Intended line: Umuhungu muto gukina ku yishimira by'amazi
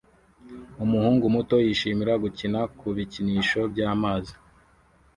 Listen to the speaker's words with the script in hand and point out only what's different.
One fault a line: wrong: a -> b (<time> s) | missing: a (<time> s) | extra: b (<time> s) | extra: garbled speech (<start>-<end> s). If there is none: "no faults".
extra: yishimira (1.7 s)
wrong: yishimira -> bikinisho (3.0 s)